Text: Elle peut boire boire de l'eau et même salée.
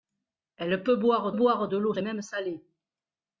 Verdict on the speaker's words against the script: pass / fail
pass